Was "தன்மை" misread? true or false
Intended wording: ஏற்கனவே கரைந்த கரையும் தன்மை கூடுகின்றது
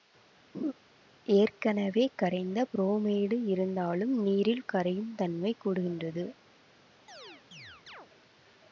false